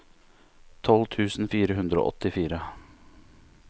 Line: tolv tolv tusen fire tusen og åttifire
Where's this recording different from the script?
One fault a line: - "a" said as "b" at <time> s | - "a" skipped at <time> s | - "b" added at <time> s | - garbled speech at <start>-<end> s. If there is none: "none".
- "tolv" skipped at 1.1 s
- "tusen" said as "hundre" at 1.8 s